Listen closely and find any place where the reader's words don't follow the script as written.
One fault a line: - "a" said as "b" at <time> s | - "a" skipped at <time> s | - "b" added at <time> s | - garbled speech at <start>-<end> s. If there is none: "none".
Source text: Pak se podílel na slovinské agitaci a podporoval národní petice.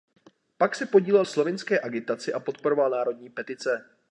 - "na" skipped at 1.2 s